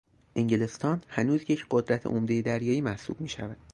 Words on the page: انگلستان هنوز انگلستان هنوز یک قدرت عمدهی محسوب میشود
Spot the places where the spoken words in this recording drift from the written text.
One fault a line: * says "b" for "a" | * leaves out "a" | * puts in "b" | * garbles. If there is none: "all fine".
* leaves out "انگلستان هنوز"
* puts in "دریایی"